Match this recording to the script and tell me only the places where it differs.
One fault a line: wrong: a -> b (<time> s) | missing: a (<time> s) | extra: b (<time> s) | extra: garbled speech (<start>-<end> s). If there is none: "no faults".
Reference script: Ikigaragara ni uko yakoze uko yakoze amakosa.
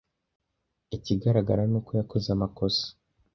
missing: uko yakoze (2.3 s)